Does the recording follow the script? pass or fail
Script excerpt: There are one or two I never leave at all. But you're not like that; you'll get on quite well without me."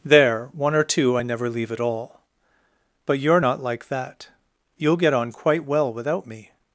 fail